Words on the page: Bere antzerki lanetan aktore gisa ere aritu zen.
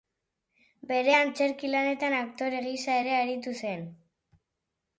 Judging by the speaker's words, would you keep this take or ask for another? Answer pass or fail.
pass